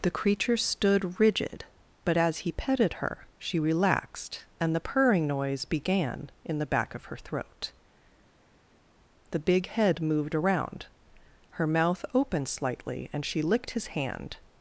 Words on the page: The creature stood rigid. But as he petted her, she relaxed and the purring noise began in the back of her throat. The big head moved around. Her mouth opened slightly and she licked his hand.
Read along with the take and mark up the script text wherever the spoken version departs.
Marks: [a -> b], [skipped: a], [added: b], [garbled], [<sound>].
The creature stood rigid. But as he petted her, she relaxed and the purring noise began in the back of her throat. The big head moved around. Her mouth opened slightly and she licked his hand.